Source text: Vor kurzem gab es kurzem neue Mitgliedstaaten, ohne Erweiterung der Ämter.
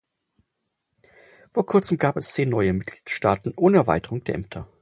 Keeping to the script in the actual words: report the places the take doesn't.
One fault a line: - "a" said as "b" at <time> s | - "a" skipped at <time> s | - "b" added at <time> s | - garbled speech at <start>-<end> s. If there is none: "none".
- "kurzem" said as "zehn" at 2.3 s